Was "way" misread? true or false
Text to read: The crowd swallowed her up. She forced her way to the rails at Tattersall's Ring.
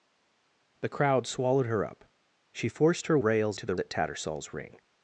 true